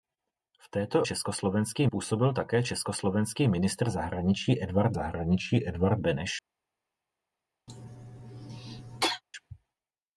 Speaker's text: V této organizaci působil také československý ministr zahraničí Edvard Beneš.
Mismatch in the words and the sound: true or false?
true